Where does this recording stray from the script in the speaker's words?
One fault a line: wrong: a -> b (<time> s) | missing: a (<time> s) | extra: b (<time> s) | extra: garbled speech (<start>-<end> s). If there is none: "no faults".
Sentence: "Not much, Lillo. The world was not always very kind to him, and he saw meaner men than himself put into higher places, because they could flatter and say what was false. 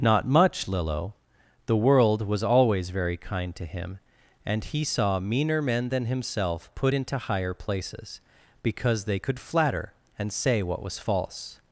missing: not (2.4 s)